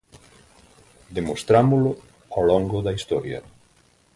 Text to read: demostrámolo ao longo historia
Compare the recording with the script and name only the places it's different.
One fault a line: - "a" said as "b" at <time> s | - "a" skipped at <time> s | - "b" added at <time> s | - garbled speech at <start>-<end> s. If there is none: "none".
- "da" added at 2.8 s